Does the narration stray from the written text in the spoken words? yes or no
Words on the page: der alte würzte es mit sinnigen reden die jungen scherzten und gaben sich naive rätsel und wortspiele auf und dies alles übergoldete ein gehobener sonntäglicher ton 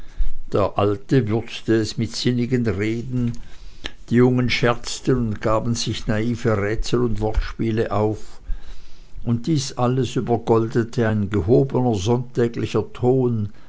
no